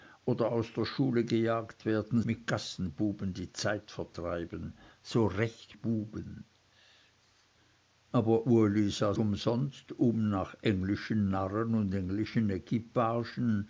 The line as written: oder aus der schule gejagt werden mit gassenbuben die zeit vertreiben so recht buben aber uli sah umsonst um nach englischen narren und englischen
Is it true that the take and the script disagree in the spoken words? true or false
false